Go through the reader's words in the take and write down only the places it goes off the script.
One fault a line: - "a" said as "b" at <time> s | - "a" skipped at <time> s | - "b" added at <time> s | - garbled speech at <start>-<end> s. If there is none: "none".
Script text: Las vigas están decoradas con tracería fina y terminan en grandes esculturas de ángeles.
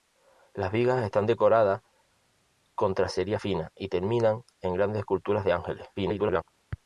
- garbled speech at 6.0-6.4 s